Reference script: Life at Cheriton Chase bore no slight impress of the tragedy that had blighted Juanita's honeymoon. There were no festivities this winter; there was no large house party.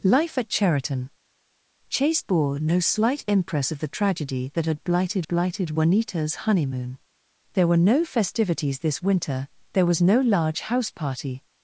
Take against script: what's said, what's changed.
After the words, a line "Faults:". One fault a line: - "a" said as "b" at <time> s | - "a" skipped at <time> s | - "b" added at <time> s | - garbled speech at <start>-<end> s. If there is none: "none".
Life at Cheriton Chase bore no slight impress of the tragedy that had blighted blighted Juanita's honeymoon. There were no festivities this winter; there was no large house party.
Faults:
- "blighted" added at 5.3 s